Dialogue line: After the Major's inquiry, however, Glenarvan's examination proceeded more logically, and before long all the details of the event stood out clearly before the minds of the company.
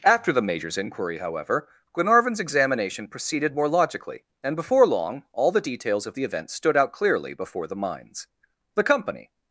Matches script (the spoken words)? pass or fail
fail